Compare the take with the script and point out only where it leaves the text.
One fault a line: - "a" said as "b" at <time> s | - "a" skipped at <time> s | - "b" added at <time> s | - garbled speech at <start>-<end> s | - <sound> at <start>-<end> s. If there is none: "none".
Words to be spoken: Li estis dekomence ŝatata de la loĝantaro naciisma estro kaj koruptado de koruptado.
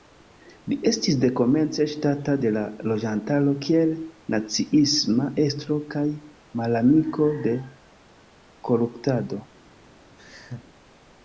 - "kiel" added at 3.7 s
- "koruptado" said as "malamiko" at 6.6 s
- laugh at 10.2-10.7 s